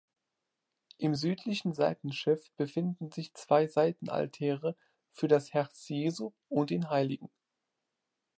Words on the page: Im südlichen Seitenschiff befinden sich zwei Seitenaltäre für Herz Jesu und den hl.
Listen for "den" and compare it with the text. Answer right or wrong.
right